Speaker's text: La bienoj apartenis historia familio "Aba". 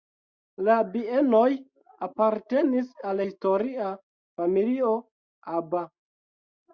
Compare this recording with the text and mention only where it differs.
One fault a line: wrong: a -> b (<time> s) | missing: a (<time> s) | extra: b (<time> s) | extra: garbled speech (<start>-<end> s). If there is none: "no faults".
extra: al (3.1 s)